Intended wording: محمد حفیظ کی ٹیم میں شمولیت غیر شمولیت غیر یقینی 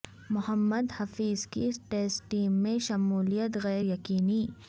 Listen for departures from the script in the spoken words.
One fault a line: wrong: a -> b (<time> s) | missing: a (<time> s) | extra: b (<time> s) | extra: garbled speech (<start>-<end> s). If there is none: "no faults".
extra: ٹیسٹ (1.9 s)
missing: شمولیت غیر (3.8 s)